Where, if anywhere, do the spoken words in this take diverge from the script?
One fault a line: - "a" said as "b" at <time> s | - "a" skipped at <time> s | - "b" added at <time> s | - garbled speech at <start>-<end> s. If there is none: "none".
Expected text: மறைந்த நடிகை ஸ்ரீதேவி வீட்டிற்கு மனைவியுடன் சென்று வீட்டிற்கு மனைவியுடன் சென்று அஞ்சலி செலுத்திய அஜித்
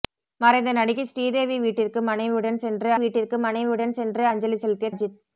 none